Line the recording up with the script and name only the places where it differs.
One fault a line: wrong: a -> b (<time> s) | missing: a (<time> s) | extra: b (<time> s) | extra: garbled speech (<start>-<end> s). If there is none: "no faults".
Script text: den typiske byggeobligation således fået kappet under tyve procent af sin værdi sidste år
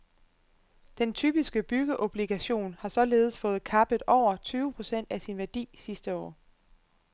extra: har (2.8 s)
wrong: under -> over (4.1 s)